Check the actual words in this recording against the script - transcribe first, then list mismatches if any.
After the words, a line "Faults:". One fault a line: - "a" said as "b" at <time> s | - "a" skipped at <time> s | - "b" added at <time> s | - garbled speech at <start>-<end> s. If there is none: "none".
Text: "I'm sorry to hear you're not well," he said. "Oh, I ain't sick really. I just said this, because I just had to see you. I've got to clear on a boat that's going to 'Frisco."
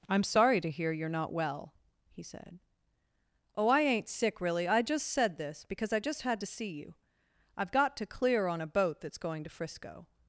"I'm sorry to hear you're not well," he said. "Oh, I ain't sick really. I just said this, because I just had to see you. I've got to clear on a boat that's going to 'Frisco."
Faults:
none